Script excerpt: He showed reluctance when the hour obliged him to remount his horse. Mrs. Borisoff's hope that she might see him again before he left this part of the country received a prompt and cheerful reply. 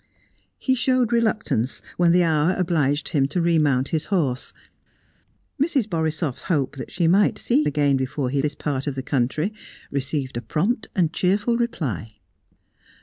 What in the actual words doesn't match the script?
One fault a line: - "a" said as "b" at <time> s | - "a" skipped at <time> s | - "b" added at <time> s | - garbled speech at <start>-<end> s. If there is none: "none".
- "him" skipped at 7.6 s
- "left" skipped at 8.4 s